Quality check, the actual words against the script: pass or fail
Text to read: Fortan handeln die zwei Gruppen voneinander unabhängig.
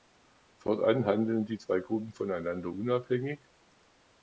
pass